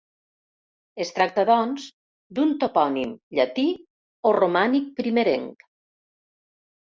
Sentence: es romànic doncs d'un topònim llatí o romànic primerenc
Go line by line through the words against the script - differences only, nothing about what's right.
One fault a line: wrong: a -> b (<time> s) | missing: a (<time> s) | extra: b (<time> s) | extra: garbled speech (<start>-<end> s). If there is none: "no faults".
wrong: romànic -> tracta (1.2 s)